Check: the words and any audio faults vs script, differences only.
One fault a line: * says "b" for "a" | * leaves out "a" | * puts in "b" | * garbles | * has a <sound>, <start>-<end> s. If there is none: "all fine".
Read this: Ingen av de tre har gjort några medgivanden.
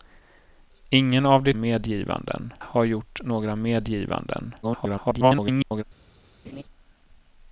* says "medgivanden" for "tre"
* garbles
* has a laugh, 6.4-6.6 s